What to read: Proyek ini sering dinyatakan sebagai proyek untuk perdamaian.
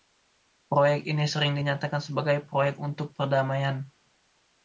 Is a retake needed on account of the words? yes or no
no